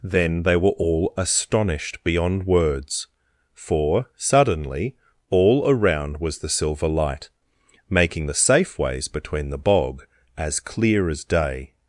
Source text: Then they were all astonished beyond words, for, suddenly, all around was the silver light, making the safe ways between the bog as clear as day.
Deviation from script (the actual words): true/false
false